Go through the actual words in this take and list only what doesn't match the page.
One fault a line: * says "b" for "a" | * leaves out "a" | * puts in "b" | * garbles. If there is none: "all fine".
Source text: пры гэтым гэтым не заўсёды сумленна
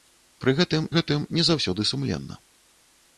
all fine